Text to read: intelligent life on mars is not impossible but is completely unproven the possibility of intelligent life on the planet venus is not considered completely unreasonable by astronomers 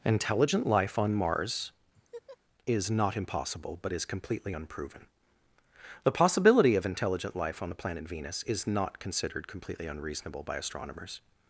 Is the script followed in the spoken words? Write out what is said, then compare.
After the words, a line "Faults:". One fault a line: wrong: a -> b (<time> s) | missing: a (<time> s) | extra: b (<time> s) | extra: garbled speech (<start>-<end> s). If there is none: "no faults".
intelligent life on mars is not impossible but is completely unproven the possibility of intelligent life on the planet venus is not considered completely unreasonable by astronomers
Faults:
no faults